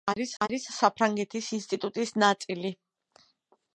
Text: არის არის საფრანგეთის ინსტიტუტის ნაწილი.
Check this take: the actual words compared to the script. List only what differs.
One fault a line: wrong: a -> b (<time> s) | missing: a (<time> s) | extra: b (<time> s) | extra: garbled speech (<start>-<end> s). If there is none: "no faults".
no faults